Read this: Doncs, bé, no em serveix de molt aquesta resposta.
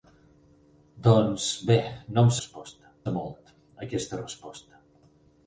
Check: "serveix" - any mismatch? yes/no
yes